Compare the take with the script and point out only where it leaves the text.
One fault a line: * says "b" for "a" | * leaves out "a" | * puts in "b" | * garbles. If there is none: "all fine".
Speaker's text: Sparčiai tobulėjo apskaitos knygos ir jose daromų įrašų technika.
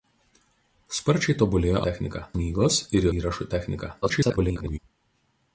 * says "technika" for "apskaitos"
* leaves out "jose daromų"
* garbles